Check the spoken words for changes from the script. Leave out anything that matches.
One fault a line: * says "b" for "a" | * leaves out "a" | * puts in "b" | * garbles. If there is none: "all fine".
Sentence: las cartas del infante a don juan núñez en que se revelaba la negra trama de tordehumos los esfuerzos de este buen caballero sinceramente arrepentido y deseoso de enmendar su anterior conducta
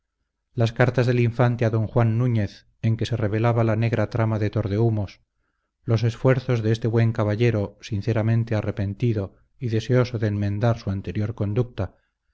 all fine